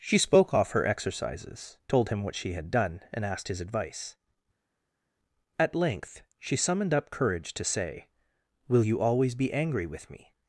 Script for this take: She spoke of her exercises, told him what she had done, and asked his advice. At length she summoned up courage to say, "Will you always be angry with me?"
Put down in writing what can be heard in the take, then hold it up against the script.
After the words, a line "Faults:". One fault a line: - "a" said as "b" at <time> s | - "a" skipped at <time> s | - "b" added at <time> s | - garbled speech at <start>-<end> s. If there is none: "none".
She spoke off her exercises, told him what she had done, and asked his advice. At length she summoned up courage to say, "Will you always be angry with me?"
Faults:
- "of" said as "off" at 0.5 s